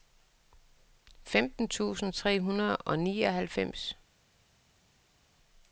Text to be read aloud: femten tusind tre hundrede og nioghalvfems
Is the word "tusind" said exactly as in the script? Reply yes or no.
yes